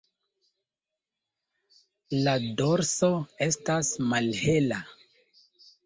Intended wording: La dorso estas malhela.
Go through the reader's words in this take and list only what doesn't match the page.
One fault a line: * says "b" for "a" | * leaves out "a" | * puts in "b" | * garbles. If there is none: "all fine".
all fine